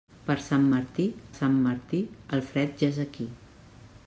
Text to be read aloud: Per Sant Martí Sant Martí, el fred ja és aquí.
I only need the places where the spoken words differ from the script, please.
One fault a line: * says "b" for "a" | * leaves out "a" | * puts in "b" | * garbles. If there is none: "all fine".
all fine